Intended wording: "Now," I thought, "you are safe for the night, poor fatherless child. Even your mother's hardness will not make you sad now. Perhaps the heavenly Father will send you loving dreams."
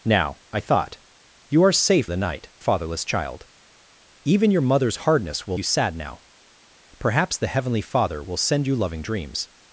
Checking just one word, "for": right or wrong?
wrong